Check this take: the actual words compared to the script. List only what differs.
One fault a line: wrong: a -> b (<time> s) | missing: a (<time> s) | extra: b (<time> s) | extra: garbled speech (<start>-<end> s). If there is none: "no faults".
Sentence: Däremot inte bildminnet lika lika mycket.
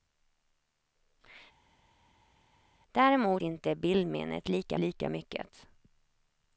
no faults